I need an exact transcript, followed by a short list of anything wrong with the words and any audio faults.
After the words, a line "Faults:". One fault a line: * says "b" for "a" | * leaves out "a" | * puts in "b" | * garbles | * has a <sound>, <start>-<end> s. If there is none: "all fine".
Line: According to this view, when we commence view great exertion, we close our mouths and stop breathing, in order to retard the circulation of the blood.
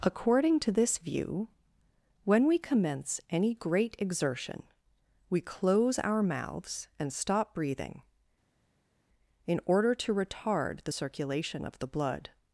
According to this view, when we commence any great exertion, we close our mouths and stop breathing, in order to retard the circulation of the blood.
Faults:
* says "any" for "view"